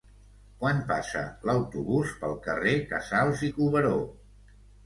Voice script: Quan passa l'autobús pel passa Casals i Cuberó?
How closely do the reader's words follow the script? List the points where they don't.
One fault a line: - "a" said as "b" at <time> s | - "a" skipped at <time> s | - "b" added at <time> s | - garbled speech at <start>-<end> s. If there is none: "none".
- "passa" said as "carrer" at 2.5 s